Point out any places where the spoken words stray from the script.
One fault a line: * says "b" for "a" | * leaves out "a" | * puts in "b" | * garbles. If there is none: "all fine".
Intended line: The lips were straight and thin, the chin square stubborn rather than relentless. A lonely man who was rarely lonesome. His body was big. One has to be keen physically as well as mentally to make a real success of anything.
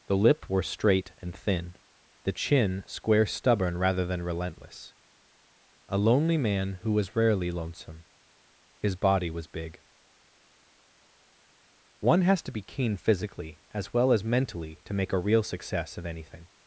* says "lip" for "lips"